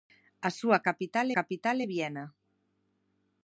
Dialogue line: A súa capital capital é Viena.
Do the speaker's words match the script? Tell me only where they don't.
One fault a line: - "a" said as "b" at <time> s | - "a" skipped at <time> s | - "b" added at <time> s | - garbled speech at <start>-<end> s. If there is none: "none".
none